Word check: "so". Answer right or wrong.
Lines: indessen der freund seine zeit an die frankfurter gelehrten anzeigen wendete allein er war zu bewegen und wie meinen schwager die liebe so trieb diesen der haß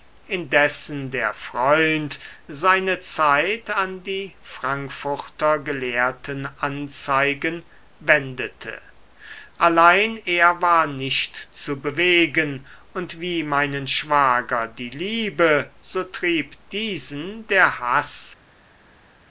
right